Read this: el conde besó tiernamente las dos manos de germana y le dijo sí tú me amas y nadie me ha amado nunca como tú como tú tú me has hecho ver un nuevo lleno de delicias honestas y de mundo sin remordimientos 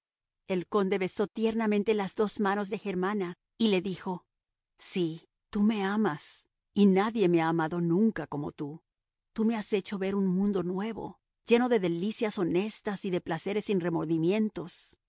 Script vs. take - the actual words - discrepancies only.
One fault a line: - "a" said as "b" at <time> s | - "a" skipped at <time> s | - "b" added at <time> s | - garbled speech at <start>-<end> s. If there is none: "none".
- "como" skipped at 8.8 s
- "tú" skipped at 9.4 s
- "mundo" added at 10.3 s
- "mundo" said as "placeres" at 13.2 s